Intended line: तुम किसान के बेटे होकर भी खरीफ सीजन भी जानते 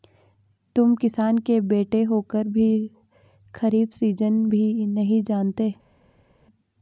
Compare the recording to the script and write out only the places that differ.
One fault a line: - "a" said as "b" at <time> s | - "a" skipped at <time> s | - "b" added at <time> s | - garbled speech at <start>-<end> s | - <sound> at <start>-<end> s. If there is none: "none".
- "नहीं" added at 4.9 s